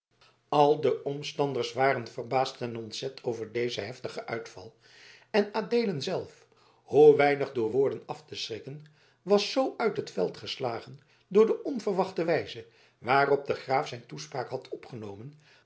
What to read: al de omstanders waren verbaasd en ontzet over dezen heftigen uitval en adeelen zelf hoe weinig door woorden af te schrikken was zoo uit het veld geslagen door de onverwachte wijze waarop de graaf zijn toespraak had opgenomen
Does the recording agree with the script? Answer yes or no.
yes